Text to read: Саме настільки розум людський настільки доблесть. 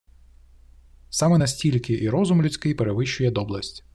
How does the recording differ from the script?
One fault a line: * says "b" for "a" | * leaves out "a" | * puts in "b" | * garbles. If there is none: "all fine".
* puts in "і"
* says "перевищує" for "настільки"